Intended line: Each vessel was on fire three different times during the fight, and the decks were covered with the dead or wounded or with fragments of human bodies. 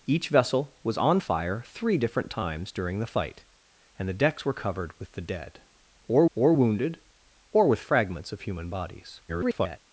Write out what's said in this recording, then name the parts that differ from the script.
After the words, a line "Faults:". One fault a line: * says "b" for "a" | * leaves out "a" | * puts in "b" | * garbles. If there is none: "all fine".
Each vessel was on fire three different times during the fight, and the decks were covered with the dead or or wounded or with fragments of human bodies. [garbled]
Faults:
* puts in "or"
* garbles